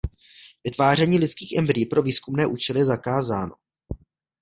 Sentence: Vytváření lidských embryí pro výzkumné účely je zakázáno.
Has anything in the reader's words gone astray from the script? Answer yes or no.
no